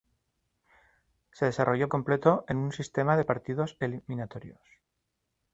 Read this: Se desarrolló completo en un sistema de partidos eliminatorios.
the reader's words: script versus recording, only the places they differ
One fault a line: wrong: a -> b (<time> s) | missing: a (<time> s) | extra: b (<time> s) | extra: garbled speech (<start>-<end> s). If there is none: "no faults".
no faults